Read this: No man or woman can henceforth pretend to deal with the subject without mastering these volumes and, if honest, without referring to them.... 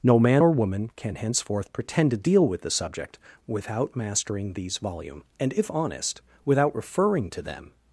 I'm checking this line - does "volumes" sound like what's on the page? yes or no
no